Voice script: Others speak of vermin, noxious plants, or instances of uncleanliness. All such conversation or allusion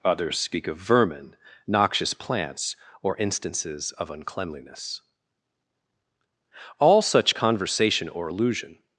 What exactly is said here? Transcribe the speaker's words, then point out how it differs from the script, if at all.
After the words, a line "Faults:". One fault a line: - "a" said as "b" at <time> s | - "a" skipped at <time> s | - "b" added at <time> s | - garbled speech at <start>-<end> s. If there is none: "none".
Others speak of vermin, noxious plants, or instances of uncleanliness. All such conversation or allusion
Faults:
none